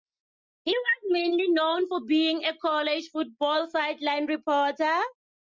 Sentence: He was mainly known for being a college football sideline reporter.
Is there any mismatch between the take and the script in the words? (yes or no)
no